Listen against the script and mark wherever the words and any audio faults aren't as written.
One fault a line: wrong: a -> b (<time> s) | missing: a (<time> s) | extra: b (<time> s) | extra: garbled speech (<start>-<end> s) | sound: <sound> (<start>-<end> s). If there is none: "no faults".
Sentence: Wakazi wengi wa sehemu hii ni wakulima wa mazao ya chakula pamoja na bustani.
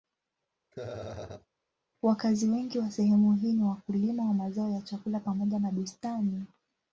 sound: laugh (0.7-1.5 s)